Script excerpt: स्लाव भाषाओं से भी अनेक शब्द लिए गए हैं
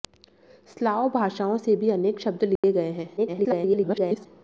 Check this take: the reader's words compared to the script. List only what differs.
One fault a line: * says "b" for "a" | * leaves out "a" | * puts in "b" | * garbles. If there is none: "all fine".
* garbles